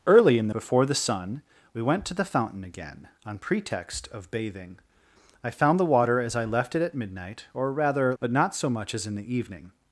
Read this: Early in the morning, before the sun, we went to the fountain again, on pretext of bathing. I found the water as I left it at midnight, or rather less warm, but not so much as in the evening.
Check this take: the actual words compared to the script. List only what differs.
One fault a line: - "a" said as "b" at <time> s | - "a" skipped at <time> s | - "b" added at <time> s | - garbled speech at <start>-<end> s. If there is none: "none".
- "morning" skipped at 0.6 s
- "less warm" skipped at 8.2 s